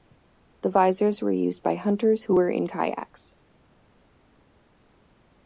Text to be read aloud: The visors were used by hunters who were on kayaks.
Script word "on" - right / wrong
wrong